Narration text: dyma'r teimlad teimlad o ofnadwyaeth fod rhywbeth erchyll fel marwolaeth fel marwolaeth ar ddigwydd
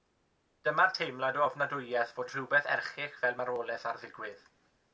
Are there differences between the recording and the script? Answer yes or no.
yes